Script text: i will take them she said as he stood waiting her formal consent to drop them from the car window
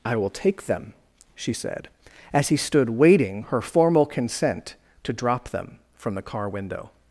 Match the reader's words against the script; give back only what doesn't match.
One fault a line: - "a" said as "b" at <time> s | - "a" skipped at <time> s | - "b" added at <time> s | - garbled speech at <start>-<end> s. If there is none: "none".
none